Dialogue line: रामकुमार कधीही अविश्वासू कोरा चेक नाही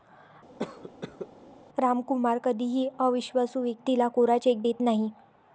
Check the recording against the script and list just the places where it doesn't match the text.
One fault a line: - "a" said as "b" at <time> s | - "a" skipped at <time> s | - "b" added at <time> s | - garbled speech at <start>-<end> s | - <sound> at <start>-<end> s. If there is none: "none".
- cough at 0.6-1.3 s
- "व्यक्तीला" added at 3.6 s
- "देत" added at 4.6 s